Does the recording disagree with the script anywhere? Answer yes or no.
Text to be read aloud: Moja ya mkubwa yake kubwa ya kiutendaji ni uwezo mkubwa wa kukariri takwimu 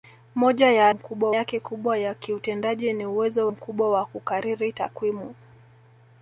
no